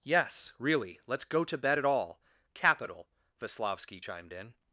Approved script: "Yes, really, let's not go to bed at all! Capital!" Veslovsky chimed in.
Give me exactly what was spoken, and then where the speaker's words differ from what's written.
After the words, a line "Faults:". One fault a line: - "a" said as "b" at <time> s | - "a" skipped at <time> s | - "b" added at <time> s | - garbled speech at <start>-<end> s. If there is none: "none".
"Yes, really, let's go to bed at all! Capital!" Veslovsky chimed in.
Faults:
- "not" skipped at 1.2 s